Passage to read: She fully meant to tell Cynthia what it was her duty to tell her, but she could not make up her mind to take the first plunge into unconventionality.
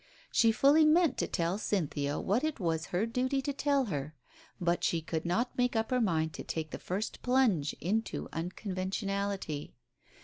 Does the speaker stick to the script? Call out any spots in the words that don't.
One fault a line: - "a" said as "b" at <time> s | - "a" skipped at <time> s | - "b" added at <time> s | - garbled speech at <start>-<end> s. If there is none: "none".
none